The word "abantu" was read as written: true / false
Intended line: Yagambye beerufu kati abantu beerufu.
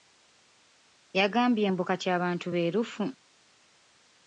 true